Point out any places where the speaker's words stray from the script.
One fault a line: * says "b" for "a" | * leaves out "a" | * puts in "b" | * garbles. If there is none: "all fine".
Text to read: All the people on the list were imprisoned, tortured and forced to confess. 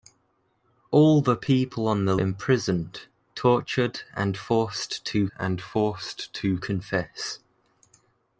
* says "imprisoned tortured and forced to" for "list were imprisoned tortured"